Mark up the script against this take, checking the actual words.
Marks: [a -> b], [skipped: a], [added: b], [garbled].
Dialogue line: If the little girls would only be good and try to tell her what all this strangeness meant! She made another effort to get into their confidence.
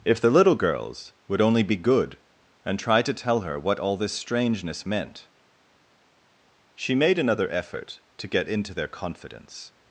If the little girls would only be good and try to tell her what all this strangeness meant! She made another effort to get into their confidence.